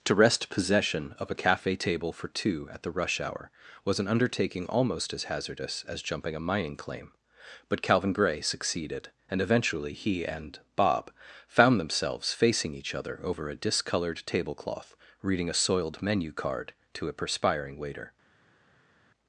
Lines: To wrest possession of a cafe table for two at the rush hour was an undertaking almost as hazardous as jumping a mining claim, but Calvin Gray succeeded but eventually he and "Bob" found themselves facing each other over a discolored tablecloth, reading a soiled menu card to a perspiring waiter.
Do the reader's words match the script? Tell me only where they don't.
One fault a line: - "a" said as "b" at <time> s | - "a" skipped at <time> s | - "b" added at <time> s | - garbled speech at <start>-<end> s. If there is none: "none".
- "but" said as "and" at 9.3 s